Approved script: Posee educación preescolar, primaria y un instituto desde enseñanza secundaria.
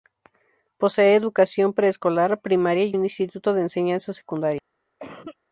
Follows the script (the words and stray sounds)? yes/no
no